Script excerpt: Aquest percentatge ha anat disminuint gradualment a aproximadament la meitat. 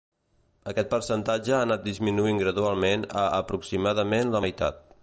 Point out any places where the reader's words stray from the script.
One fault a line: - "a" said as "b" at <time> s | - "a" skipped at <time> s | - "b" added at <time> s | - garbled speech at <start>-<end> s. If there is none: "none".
none